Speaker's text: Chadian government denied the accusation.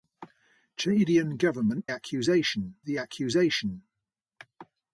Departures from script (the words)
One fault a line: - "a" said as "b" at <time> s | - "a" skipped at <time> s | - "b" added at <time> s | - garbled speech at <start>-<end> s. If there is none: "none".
- "denied" said as "accusation" at 1.9 s